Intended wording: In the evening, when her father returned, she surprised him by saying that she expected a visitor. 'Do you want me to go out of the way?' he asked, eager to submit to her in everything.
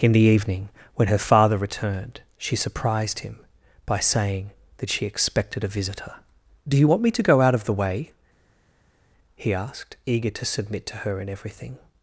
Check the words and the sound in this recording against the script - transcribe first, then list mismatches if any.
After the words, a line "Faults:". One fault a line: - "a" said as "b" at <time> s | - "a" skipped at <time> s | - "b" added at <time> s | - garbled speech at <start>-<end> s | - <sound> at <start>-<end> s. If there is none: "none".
In the evening, when her father returned, she surprised him by saying that she expected a visitor. 'Do you want me to go out of the way?' he asked, eager to submit to her in everything.
Faults:
none